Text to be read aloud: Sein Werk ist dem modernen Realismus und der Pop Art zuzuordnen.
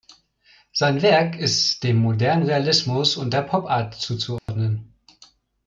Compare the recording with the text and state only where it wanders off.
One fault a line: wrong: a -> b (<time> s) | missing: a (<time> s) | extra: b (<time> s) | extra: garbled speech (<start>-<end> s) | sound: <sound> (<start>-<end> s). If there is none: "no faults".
sound: dropout (4.4-4.5 s)